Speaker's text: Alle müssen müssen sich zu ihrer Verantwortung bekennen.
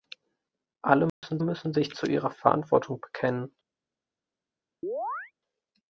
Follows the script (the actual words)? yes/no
yes